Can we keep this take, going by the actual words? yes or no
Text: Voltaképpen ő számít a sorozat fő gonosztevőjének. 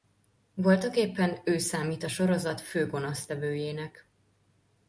yes